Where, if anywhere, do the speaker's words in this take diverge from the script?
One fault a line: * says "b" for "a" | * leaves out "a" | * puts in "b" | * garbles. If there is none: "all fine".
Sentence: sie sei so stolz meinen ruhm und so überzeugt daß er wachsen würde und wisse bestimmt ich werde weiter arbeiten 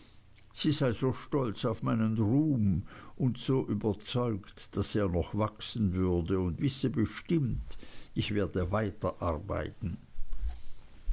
* puts in "auf"
* puts in "noch"